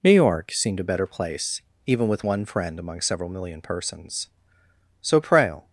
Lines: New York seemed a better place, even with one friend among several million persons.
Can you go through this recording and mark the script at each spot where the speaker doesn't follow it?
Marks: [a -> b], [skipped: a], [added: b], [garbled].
New York seemed a better place, even with one friend among several million persons. [added: So Prale]